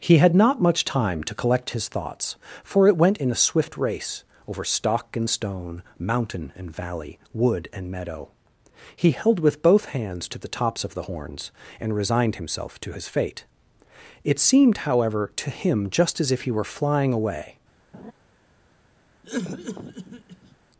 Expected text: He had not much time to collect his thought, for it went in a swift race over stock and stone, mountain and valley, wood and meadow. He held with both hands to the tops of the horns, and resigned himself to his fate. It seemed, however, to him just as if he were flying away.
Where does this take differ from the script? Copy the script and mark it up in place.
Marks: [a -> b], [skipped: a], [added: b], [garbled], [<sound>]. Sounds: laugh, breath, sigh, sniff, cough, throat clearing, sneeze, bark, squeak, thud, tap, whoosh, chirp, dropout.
He had not much time to collect his [thought, -> thoughts] for it went in a swift race over stock and stone, mountain and valley, wood and meadow. He held with both hands to the tops of the horns, and resigned himself to his fate. It seemed, however, to him just as if he were flying away. [laugh] [cough]